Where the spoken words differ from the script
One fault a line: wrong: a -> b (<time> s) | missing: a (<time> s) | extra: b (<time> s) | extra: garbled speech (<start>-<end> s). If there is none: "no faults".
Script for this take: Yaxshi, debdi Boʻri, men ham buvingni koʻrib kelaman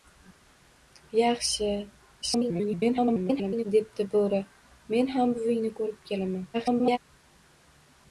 extra: garbled speech (2.2-3.7 s)
extra: garbled speech (6.5-7.0 s)